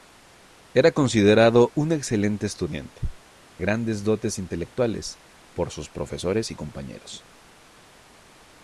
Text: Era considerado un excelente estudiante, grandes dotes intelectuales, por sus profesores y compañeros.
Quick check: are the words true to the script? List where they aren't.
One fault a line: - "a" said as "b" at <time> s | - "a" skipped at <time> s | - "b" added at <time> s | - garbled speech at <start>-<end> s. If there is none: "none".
none